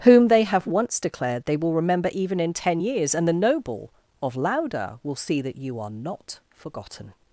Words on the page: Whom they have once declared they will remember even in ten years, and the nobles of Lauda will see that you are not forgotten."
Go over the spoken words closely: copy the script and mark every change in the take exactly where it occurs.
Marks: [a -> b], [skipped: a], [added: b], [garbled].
Whom they have once declared they will remember even in ten years, and the [nobles -> noble] of Lauda will see that you are not forgotten."